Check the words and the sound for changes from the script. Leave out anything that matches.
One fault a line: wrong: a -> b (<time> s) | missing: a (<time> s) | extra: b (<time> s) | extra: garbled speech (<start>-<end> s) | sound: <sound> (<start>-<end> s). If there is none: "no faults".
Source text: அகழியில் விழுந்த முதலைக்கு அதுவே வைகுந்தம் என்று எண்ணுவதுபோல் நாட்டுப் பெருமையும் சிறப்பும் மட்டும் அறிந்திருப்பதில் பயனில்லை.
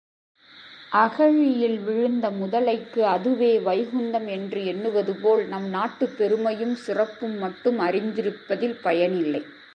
extra: நம் (5.5 s)